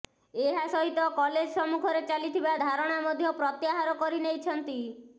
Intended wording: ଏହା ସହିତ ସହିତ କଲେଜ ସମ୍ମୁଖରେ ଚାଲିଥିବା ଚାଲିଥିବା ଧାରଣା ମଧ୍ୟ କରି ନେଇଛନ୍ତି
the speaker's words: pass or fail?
fail